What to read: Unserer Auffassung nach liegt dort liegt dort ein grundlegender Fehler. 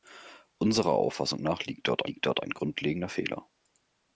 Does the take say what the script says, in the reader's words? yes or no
yes